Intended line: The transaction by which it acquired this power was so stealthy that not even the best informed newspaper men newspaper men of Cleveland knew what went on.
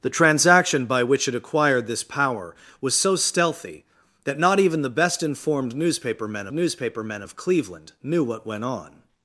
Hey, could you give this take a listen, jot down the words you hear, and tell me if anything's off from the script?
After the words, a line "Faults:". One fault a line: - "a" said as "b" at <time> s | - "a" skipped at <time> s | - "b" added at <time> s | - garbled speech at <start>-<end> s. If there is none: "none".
The transaction by which it acquired this power was so stealthy that not even the best informed newspaper men newspaper men of Cleveland knew what went on.
Faults:
none